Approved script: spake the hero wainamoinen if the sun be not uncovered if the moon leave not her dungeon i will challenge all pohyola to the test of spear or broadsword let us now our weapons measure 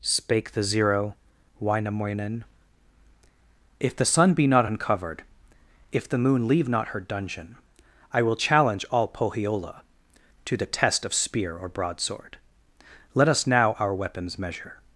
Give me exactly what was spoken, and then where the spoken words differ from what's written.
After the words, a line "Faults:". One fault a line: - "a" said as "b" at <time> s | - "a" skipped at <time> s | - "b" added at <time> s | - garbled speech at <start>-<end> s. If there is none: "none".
spake the zero wainamoinen if the sun be not uncovered if the moon leave not her dungeon i will challenge all pohyola to the test of spear or broadsword let us now our weapons measure
Faults:
- "hero" said as "zero" at 0.6 s